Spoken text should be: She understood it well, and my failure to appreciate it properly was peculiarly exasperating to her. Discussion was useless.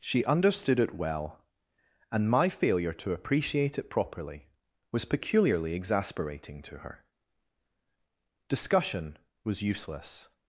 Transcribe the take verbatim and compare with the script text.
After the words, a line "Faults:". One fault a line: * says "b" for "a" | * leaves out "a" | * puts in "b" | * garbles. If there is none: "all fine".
She understood it well, and my failure to appreciate it properly was peculiarly exasperating to her. Discussion was useless.
Faults:
all fine